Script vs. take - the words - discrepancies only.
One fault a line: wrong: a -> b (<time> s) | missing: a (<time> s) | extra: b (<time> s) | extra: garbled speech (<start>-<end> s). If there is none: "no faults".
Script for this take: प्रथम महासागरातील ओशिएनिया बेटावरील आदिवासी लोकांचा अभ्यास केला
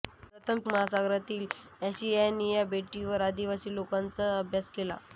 no faults